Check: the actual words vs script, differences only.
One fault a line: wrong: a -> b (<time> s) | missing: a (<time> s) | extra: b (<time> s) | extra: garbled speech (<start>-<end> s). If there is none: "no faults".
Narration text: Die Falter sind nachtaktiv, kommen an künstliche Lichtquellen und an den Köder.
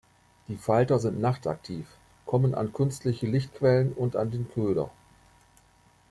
no faults